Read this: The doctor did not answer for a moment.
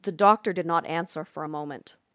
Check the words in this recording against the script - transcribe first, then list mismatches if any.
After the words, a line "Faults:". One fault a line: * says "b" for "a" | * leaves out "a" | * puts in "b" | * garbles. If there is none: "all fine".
The doctor did not answer for a moment.
Faults:
all fine